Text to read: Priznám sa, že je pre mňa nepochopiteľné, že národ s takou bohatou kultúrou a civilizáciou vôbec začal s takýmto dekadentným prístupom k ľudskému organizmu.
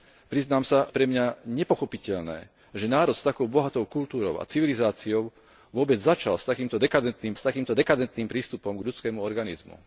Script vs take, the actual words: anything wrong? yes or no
yes